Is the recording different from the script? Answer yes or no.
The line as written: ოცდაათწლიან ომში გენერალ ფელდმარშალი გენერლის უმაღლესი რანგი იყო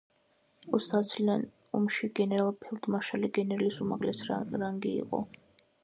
no